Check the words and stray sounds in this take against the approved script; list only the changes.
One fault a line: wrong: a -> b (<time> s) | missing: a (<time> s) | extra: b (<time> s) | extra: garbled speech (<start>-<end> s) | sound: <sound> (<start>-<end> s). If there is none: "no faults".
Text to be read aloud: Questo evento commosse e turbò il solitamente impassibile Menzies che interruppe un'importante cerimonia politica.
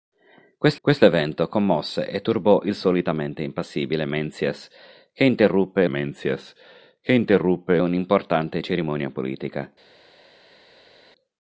extra: questo (0.8 s)
extra: Menzies che interruppe (5.9 s)